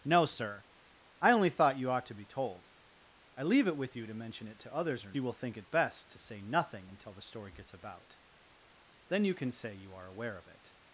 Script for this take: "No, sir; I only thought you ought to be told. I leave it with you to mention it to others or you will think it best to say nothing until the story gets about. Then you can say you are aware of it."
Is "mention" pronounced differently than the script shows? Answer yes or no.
no